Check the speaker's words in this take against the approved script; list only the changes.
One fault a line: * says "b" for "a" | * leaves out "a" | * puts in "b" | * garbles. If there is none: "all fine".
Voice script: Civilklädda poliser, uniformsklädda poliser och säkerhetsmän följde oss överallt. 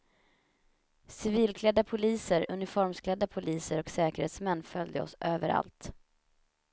all fine